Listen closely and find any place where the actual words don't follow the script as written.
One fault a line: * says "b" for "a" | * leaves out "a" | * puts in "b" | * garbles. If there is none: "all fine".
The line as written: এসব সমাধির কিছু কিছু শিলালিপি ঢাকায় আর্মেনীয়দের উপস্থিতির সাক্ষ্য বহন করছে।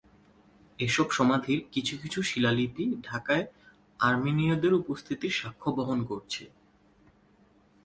all fine